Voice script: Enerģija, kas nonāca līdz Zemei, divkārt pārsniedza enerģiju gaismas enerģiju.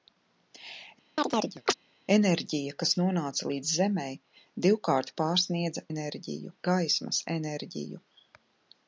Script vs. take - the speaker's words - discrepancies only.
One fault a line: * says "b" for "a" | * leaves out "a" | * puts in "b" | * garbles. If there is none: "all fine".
all fine